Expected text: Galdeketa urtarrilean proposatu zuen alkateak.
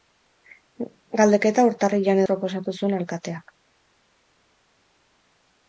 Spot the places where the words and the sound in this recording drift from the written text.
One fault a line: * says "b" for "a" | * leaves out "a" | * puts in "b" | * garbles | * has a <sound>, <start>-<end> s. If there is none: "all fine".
all fine